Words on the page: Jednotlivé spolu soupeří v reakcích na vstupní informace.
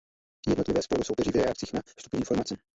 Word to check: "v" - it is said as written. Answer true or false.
true